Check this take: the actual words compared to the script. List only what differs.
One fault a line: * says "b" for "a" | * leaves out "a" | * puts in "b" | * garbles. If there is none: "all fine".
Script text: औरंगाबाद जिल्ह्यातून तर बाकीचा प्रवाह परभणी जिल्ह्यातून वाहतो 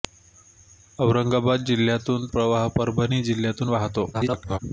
* leaves out "तर बाकीचा"
* garbles